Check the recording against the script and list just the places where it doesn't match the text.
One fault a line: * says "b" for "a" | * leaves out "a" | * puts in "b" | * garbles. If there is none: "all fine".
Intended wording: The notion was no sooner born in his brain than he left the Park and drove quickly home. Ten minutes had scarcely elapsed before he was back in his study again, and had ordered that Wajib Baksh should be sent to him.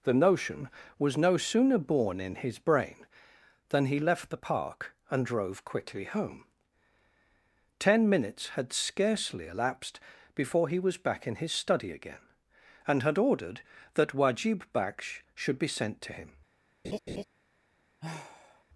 all fine